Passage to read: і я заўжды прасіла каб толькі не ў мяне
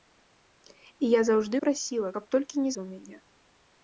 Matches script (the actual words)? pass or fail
pass